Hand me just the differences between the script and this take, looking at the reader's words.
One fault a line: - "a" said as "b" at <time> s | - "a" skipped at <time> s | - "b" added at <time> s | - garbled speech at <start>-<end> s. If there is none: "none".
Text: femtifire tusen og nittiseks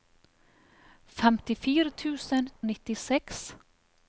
none